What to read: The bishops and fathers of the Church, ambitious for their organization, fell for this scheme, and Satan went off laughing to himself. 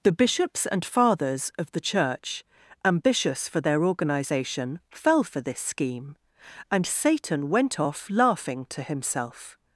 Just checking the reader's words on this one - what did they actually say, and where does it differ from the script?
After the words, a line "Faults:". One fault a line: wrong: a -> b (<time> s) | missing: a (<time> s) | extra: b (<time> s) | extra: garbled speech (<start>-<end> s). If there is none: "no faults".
The bishops and fathers of the Church, ambitious for their organization, fell for this scheme, and Satan went off laughing to himself.
Faults:
no faults